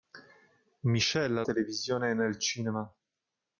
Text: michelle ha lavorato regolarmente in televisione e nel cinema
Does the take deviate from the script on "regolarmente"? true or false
true